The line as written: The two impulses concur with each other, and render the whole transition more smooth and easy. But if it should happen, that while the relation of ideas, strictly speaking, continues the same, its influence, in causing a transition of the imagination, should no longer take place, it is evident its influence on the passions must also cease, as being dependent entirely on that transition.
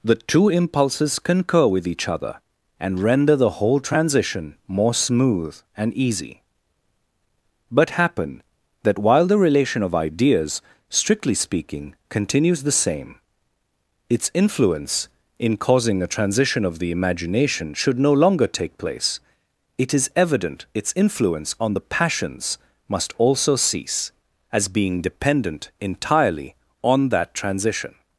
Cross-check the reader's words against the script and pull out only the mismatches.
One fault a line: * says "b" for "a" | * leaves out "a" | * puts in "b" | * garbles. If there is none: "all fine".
* leaves out "if it should"